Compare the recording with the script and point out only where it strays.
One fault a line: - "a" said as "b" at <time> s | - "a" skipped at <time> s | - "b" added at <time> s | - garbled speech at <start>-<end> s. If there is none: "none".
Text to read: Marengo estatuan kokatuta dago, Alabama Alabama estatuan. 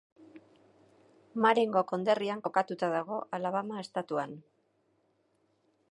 - "estatuan" said as "konderrian" at 1.9 s
- "Alabama" skipped at 3.8 s